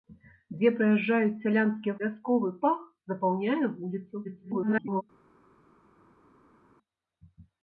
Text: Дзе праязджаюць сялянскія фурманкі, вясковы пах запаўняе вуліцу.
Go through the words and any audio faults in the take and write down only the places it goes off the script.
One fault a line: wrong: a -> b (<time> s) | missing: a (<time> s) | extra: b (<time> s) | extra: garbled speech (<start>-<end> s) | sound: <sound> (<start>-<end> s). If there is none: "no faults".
missing: фурманкі (1.9 s)
extra: garbled speech (4.2-5.0 s)